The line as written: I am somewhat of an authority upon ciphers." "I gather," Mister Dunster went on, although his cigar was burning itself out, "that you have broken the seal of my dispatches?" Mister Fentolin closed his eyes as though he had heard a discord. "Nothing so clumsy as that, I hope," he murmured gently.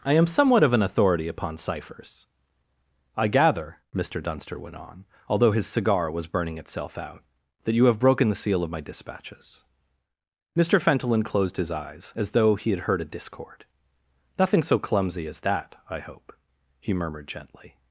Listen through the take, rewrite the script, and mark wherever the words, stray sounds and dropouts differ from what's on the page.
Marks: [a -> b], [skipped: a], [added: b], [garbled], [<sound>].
I am somewhat of an authority upon ciphers." "I gather," Mister Dunster went on, although his cigar was burning itself out, "that you have broken the seal of my dispatches?" Mister Fentolin closed his eyes as though he had heard a discord. "Nothing so clumsy as that, I hope," he murmured gently.